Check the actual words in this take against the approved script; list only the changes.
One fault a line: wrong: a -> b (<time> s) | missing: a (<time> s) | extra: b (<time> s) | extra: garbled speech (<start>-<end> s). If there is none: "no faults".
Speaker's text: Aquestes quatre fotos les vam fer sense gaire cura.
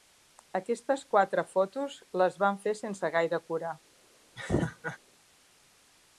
no faults